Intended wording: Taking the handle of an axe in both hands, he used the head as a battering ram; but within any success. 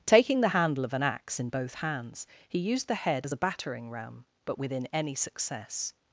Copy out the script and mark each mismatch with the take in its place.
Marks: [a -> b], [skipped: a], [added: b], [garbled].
Taking the handle of an axe in both hands, he used the head as a battering ram; but within any success.